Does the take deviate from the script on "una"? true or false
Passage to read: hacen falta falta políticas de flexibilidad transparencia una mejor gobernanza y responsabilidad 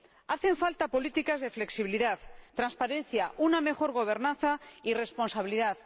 false